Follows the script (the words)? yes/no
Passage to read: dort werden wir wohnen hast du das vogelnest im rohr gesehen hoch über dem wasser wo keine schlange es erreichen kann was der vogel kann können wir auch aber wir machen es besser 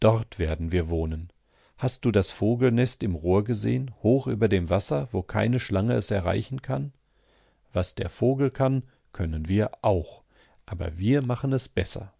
yes